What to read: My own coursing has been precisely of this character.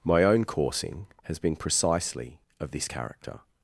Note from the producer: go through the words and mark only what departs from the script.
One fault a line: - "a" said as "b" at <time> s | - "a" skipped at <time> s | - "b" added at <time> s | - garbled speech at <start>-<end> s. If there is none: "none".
none